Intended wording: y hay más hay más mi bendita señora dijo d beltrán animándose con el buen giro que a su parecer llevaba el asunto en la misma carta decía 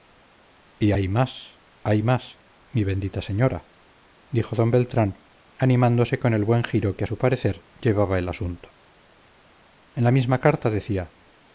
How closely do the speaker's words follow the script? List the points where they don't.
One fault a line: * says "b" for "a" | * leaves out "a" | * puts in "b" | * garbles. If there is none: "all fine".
all fine